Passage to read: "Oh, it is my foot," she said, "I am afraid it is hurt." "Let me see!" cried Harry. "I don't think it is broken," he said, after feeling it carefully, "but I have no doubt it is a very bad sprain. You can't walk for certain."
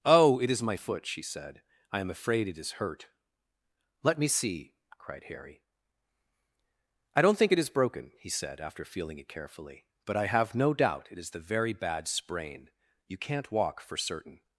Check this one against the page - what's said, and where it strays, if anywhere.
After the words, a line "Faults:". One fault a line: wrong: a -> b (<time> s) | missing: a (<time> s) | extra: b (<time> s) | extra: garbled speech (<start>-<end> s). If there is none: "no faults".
"Oh, it is my foot," she said, "I am afraid it is hurt." "Let me see!" cried Harry. "I don't think it is broken," he said, after feeling it carefully, "but I have no doubt it is the very bad sprain. You can't walk for certain."
Faults:
wrong: a -> the (11.3 s)